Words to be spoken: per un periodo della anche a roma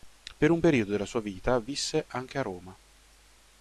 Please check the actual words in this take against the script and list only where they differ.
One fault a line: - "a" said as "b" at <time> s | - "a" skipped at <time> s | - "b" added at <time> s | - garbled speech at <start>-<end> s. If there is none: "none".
- "sua vita visse" added at 1.0 s